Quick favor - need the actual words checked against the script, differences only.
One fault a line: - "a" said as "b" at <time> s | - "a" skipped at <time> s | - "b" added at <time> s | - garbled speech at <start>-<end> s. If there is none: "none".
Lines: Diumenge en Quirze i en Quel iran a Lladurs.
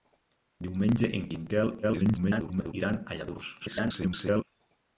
- "Quirze" skipped at 1.3 s
- garbled speech at 1.8-2.7 s
- garbled speech at 3.6-4.4 s